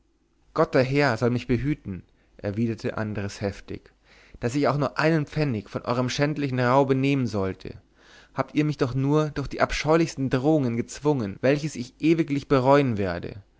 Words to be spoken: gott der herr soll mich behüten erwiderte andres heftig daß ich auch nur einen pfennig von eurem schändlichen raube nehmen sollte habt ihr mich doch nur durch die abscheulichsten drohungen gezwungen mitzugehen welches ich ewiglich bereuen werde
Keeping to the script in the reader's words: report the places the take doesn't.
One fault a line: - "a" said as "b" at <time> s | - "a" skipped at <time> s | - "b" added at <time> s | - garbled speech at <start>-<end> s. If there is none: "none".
- "mitzugehen" skipped at 11.4 s